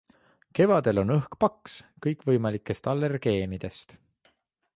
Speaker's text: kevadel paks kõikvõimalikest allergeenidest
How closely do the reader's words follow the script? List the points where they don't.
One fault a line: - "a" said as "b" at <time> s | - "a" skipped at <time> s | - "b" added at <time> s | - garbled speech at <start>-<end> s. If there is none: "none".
- "on õhk" added at 1.0 s